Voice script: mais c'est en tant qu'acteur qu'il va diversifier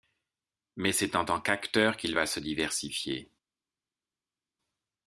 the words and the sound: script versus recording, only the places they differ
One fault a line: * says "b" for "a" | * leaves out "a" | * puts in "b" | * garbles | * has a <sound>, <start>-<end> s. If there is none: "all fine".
* puts in "se"